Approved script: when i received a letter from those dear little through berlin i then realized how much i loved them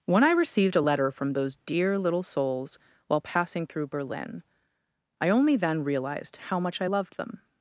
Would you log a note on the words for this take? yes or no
yes